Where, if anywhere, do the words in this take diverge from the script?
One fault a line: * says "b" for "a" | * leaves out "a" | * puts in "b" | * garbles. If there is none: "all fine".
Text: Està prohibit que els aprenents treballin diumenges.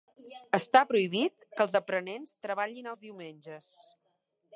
* puts in "els"